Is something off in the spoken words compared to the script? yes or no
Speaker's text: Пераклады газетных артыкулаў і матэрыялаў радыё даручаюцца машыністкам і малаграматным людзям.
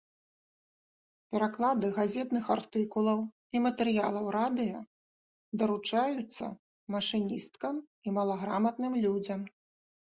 no